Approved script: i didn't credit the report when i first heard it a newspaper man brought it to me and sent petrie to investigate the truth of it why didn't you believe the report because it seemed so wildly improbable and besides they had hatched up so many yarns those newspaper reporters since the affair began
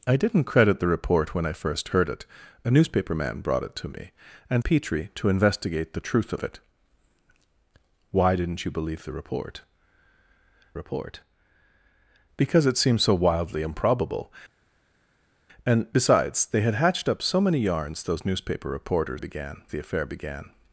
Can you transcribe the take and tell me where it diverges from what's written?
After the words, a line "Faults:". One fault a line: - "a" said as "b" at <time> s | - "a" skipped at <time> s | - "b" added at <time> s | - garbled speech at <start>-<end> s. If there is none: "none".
i didn't credit the report when i first heard it a newspaper man brought it to me and petrie to investigate the truth of it why didn't you believe the report report because it seemed so wildly improbable and besides they had hatched up so many yarns those newspaper reporters began the affair began
Faults:
- "sent" skipped at 4.7 s
- "report" added at 10.7 s
- "since" said as "began" at 19.2 s